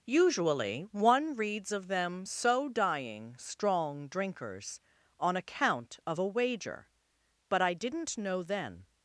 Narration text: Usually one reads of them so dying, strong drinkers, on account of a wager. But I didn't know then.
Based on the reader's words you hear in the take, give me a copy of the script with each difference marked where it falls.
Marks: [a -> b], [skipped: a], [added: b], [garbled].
Usually one reads of them so dying, strong drinkers, on account of a wager. But I didn't know then.